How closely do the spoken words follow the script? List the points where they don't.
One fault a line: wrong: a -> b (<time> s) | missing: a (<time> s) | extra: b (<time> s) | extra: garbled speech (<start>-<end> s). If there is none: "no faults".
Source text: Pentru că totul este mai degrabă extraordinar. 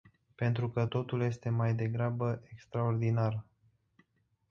no faults